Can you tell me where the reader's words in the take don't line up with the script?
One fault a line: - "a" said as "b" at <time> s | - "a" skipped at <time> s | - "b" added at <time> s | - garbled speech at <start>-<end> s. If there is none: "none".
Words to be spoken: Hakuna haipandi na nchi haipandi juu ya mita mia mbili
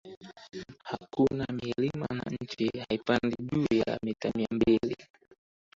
- "haipandi" said as "milima" at 1.6 s